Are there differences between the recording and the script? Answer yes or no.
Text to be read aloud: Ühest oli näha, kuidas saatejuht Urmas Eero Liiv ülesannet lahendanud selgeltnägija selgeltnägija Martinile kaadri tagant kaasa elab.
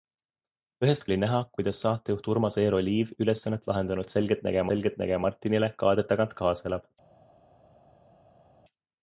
no